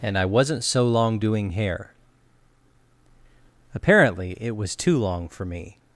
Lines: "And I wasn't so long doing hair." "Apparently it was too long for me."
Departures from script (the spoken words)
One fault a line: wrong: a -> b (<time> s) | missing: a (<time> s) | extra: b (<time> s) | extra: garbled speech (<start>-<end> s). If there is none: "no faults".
no faults